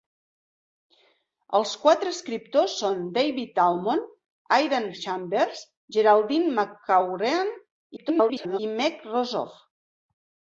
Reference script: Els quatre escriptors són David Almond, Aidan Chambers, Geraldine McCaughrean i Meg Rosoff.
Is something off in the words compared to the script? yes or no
yes